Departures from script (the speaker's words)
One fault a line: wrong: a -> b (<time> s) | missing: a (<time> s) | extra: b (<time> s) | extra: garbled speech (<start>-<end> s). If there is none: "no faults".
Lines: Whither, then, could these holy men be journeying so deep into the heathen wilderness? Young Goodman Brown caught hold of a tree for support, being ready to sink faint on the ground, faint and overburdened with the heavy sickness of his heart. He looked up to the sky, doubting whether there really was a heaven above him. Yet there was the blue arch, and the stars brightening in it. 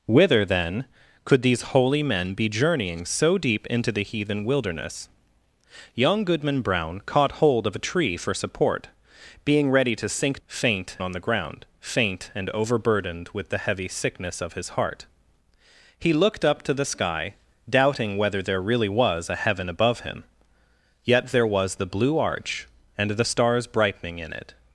no faults